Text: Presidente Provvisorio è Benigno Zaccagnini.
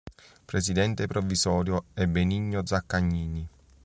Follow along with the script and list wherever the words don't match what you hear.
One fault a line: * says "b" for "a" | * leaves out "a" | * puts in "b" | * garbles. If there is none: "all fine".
all fine